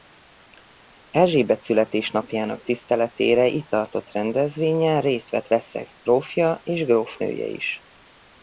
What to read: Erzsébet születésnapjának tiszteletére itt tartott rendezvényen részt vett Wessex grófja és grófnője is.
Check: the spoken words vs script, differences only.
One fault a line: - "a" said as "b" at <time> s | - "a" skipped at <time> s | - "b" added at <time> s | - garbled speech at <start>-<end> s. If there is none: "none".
none